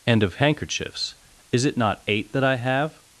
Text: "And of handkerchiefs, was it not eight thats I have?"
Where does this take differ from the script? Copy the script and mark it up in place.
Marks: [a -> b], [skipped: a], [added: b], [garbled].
"And of handkerchiefs, [was -> is] it not eight [thats -> that] I have?"